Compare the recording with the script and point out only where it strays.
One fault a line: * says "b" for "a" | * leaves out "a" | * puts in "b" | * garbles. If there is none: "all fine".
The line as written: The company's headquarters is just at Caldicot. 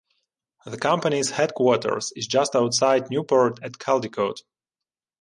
* puts in "outside Newport"